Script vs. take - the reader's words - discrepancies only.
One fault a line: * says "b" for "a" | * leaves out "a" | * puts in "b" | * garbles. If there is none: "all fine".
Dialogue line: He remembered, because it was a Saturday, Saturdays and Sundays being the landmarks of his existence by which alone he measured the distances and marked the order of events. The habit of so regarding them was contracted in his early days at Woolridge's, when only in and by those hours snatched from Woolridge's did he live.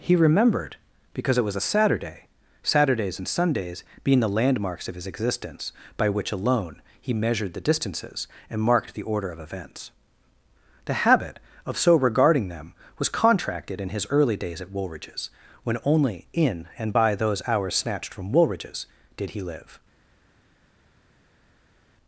all fine